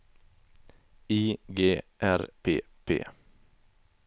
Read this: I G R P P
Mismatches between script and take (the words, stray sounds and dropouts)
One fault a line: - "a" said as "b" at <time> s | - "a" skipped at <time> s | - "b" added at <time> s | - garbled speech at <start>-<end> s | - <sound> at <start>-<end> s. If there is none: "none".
none